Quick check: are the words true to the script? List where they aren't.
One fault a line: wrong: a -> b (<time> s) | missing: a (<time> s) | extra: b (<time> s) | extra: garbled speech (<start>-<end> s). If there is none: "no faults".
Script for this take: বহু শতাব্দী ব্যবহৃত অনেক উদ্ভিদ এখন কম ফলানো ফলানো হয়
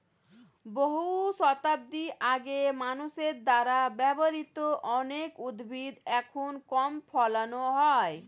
extra: আগে মানুষের দ্বারা (2.3 s)
missing: ফলানো (7.6 s)